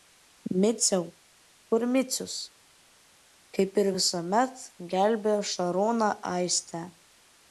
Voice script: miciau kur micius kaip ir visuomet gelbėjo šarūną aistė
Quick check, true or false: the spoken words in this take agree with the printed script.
true